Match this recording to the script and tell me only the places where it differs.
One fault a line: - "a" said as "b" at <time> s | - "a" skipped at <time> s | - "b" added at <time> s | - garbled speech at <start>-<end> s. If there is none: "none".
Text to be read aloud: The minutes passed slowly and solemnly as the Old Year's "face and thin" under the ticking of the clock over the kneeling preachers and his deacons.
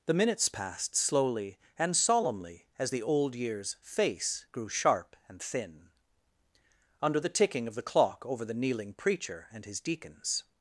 - "grew sharp" added at 4.5 s
- "preachers" said as "preacher" at 8.9 s